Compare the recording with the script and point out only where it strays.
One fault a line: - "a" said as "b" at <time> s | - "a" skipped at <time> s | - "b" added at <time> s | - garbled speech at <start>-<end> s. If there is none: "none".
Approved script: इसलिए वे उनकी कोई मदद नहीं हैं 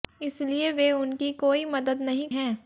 none